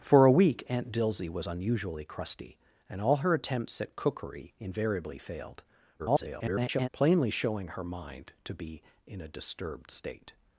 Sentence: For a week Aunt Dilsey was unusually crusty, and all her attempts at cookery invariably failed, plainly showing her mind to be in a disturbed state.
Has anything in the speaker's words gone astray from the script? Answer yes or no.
yes